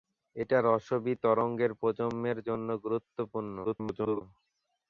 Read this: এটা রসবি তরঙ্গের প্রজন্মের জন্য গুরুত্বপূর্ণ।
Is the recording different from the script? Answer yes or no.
yes